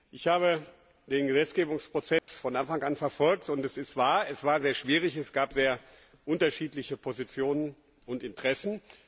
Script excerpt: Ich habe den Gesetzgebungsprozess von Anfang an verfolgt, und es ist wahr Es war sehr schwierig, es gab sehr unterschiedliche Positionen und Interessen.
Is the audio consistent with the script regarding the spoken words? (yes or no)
yes